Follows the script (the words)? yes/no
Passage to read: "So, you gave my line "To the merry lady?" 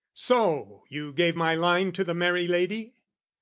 yes